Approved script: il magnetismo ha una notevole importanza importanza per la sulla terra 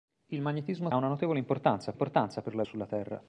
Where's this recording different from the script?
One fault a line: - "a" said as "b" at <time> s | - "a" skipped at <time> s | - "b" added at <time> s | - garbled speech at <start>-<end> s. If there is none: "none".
none